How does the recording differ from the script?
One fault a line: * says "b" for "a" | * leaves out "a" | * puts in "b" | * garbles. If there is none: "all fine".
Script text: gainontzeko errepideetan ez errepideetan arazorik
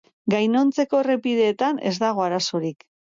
* says "dago" for "errepideetan"